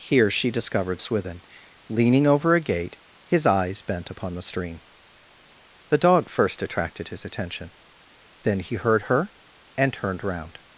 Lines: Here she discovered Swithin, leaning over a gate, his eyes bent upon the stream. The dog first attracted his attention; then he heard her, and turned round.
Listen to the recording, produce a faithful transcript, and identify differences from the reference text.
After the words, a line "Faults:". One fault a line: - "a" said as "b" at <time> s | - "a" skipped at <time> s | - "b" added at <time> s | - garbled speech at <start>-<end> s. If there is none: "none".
Here she discovered Swithin, leaning over a gate, his eyes bent upon the stream. The dog first attracted his attention; then he heard her, and turned round.
Faults:
none